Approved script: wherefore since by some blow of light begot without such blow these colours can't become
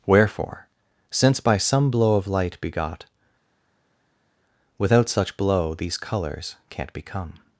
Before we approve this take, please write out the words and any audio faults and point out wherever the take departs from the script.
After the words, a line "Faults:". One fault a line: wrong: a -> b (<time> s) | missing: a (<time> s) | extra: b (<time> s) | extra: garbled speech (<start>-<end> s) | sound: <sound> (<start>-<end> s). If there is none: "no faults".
wherefore since by some blow of light begot without such blow these colours can't become
Faults:
no faults